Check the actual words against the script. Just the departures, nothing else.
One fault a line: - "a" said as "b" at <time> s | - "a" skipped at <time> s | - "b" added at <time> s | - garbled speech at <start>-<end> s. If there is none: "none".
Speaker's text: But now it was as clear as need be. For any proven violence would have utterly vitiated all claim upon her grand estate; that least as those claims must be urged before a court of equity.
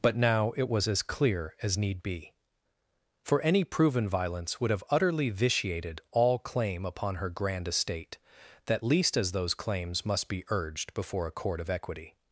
none